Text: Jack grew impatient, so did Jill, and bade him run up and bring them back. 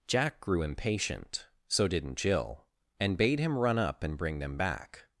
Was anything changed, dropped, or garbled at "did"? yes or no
yes